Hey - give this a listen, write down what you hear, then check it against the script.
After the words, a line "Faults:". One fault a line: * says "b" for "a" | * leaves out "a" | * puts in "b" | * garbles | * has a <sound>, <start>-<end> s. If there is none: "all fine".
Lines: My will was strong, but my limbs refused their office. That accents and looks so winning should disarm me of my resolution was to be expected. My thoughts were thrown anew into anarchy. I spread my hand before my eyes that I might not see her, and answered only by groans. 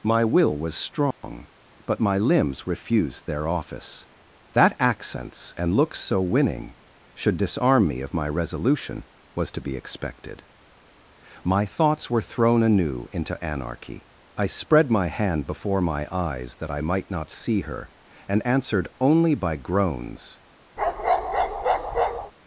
My will was strong, but my limbs refused their office. That accents and looks so winning should disarm me of my resolution was to be expected. My thoughts were thrown anew into anarchy. I spread my hand before my eyes that I might not see her, and answered only by groans.
Faults:
* has a dropout, 1.1-1.2 s
* has a bark, 20.8-22.3 s